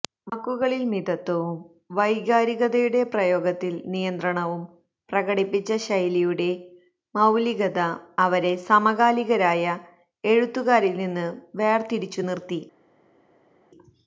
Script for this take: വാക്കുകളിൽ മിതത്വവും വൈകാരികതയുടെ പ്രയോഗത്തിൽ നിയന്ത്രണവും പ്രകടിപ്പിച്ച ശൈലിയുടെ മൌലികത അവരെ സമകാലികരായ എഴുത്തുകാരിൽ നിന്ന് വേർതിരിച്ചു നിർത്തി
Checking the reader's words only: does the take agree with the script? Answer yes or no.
yes